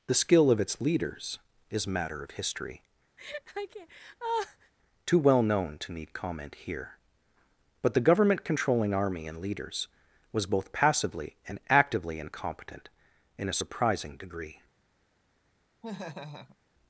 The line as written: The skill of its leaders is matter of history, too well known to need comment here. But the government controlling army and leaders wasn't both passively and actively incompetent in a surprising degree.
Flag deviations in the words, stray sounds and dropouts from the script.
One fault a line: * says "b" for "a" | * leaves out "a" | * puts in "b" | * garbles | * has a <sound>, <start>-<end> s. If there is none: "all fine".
* has a laugh, 3.2-4.7 s
* says "was" for "wasn't"
* has a laugh, 15.8-16.6 s